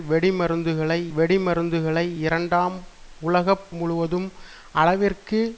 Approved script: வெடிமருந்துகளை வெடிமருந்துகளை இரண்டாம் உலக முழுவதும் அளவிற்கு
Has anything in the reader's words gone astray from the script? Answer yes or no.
no